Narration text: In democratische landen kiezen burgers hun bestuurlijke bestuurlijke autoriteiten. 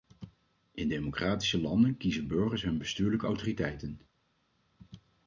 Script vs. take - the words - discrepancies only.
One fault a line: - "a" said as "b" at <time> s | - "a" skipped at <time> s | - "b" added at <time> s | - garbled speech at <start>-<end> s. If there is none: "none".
- "bestuurlijke" skipped at 3.3 s